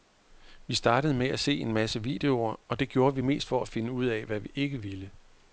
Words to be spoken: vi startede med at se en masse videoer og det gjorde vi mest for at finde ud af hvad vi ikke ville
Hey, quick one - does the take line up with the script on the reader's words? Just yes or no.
yes